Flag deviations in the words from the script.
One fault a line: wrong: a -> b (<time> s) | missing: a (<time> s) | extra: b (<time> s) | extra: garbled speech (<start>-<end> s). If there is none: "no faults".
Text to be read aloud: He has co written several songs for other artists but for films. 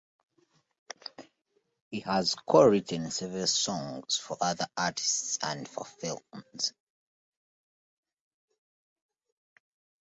wrong: but -> and (5.4 s)